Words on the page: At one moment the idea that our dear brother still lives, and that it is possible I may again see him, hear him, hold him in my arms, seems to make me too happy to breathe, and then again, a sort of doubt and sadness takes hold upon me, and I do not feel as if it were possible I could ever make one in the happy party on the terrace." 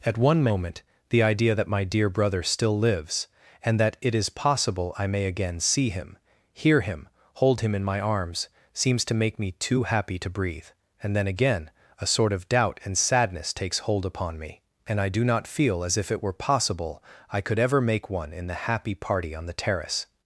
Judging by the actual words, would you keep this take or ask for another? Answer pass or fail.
fail